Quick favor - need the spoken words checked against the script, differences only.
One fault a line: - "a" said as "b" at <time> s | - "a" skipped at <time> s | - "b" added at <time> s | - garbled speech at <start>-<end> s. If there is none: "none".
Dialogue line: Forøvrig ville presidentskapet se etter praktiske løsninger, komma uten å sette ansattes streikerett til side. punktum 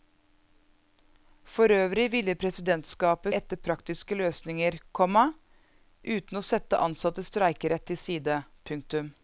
- "se" skipped at 3.4 s